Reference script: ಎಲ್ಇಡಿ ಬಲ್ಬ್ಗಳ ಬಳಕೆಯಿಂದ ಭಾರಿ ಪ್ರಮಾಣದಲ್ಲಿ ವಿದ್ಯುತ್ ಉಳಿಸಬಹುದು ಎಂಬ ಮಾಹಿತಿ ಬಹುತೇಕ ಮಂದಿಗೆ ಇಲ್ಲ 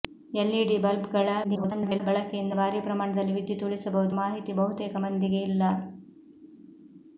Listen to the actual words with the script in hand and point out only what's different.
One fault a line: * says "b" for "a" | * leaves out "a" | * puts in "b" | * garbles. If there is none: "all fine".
* garbles
* leaves out "ಎಂಬ"